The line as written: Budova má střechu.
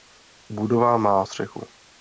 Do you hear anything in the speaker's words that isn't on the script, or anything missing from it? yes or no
no